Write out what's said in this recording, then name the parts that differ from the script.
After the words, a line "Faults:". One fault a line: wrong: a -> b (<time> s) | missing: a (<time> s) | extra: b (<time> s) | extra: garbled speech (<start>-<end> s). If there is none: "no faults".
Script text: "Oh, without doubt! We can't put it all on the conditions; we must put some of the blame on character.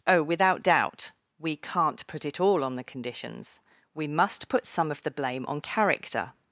"Oh, without doubt! We can't put it all on the conditions; we must put some of the blame on character.
Faults:
no faults